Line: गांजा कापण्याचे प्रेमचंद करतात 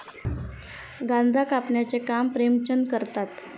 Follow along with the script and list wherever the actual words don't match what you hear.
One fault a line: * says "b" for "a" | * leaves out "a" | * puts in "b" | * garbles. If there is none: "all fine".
* puts in "काम"